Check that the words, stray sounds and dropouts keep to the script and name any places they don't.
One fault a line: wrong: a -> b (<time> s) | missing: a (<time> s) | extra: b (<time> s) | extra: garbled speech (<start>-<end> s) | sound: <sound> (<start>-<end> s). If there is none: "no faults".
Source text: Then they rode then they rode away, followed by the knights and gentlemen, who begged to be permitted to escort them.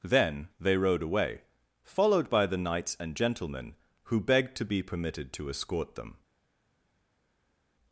missing: then they rode (1.0 s)